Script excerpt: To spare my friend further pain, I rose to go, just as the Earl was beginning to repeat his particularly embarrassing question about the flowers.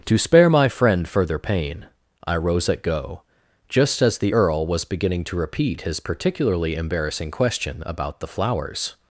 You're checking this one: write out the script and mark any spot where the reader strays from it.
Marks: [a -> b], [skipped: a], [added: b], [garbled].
To spare my friend further pain, I rose [to -> at] go, just as the Earl was beginning to repeat his particularly embarrassing question about the flowers.